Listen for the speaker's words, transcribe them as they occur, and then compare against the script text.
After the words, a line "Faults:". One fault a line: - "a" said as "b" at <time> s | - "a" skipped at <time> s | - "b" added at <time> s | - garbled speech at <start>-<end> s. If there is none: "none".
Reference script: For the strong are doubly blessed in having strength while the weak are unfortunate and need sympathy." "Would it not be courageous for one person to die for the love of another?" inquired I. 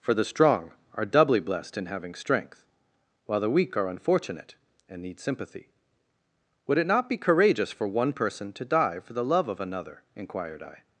For the strong are doubly blessed in having strength while the weak are unfortunate and need sympathy." "Would it not be courageous for one person to die for the love of another?" inquired I.
Faults:
none